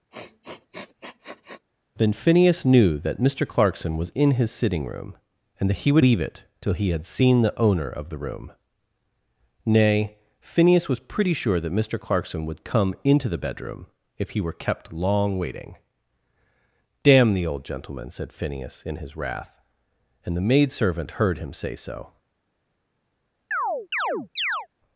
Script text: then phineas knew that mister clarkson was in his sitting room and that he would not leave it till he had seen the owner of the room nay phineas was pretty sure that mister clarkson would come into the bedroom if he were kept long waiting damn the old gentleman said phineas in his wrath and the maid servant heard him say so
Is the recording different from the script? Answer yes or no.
yes